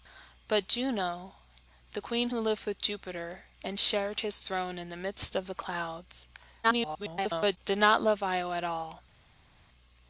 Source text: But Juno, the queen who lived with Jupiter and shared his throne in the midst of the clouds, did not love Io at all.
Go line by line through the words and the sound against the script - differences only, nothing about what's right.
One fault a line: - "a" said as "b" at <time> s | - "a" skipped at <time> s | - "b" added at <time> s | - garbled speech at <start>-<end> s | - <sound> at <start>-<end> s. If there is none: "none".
- garbled speech at 6.6-7.6 s